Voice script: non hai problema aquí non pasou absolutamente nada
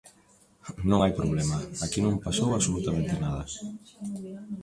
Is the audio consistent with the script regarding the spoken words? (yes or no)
yes